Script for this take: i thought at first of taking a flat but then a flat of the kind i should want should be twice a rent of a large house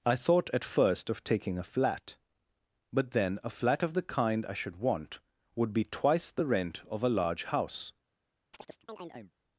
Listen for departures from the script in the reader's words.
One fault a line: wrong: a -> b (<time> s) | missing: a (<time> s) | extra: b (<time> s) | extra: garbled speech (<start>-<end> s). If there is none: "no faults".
wrong: should -> would (5.5 s)
wrong: a -> the (6.3 s)